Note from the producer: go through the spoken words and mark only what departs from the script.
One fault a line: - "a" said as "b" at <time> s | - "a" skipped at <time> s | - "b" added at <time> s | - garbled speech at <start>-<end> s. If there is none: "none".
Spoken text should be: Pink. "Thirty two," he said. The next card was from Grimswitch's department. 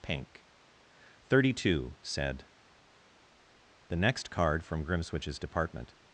- "he" skipped at 1.9 s
- "was" skipped at 4.6 s